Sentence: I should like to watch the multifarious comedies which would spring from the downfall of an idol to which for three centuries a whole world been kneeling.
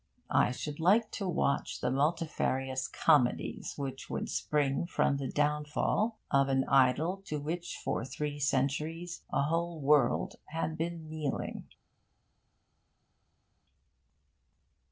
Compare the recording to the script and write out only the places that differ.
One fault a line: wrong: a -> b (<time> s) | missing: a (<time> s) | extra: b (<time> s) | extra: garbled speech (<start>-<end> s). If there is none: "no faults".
extra: had (10.5 s)